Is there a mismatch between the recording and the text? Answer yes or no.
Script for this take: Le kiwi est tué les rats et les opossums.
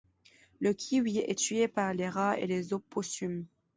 yes